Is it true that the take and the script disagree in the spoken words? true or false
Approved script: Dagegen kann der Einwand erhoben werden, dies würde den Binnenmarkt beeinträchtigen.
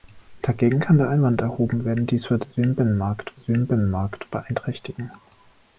true